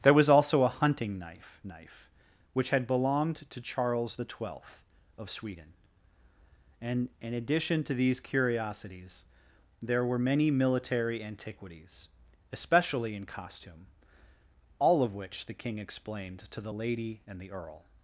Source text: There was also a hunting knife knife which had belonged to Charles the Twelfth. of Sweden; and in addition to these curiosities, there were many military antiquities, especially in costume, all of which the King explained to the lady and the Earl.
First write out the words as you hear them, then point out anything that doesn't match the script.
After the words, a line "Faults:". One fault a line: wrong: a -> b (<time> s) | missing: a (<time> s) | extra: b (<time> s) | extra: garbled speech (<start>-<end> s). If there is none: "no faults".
There was also a hunting knife knife which had belonged to Charles the Twelfth. of Sweden; and in addition to these curiosities, there were many military antiquities, especially in costume, all of which the King explained to the lady and the Earl.
Faults:
no faults